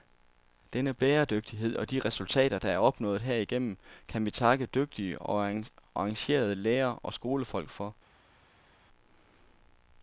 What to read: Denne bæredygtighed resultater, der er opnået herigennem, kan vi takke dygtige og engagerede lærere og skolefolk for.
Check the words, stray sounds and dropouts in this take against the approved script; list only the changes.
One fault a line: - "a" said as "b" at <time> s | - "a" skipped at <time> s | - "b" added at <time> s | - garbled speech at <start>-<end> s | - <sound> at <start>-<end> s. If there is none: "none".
- "og de" added at 1.8 s